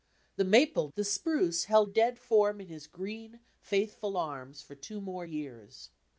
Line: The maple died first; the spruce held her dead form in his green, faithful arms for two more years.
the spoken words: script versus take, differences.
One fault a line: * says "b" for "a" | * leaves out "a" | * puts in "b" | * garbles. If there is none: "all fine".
* leaves out "died first"
* leaves out "her"